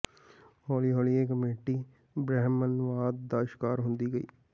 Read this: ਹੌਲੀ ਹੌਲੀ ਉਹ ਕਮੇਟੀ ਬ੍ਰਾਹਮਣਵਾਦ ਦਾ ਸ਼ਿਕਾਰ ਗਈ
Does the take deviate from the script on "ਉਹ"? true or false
true